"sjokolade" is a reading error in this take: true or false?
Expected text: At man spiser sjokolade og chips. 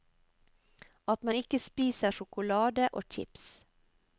false